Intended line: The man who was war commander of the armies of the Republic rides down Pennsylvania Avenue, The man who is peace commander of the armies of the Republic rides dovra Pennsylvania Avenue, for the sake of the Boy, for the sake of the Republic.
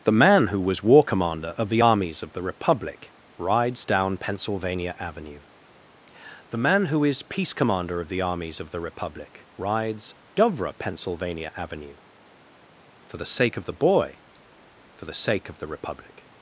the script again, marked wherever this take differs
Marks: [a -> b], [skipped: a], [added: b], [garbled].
The man who was war commander of the armies of the Republic rides down Pennsylvania Avenue, The man who is peace commander of the armies of the Republic rides dovra Pennsylvania Avenue, for the sake of the Boy, for the sake of the Republic.